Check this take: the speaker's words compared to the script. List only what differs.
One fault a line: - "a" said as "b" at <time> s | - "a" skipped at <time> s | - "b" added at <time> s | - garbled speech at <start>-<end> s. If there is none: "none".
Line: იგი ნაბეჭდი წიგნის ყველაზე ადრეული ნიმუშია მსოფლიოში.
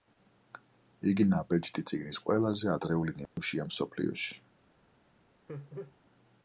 none